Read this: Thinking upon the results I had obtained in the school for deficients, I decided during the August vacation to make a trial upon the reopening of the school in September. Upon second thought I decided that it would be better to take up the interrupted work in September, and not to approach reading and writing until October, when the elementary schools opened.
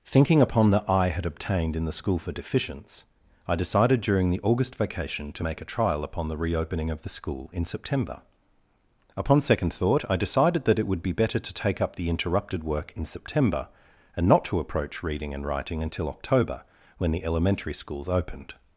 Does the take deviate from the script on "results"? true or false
true